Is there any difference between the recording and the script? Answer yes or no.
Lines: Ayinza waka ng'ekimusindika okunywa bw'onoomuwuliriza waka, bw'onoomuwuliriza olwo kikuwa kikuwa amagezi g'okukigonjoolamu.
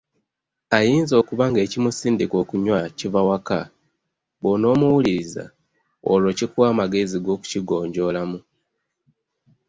yes